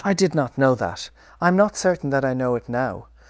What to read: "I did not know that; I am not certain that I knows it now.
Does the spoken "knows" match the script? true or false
false